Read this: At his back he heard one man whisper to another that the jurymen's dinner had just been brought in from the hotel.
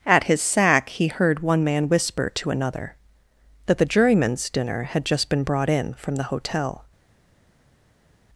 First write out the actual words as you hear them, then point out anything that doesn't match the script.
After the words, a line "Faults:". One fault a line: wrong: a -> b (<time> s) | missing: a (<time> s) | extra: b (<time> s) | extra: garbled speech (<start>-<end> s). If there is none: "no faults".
At his sack he heard one man whisper to another that the jurymen's dinner had just been brought in from the hotel.
Faults:
wrong: back -> sack (0.4 s)